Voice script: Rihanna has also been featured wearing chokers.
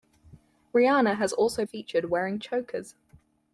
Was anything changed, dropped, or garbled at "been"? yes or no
yes